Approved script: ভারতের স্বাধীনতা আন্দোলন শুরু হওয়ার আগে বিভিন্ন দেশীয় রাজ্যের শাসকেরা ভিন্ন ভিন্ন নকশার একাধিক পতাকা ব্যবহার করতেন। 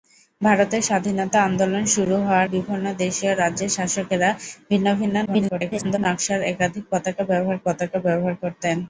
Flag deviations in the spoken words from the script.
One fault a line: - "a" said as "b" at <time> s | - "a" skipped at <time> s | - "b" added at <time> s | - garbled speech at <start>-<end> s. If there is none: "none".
- "আগে" skipped at 2.5 s
- garbled speech at 5.3-6.0 s
- "পতাকা ব্যবহার" added at 7.6 s